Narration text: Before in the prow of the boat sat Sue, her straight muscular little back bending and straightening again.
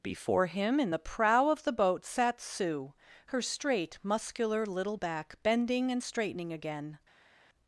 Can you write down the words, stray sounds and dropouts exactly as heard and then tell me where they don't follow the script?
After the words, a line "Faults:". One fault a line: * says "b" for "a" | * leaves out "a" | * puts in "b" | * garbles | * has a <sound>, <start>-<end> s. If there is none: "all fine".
Before him in the prow of the boat sat Sue, her straight muscular little back bending and straightening again.
Faults:
* puts in "him"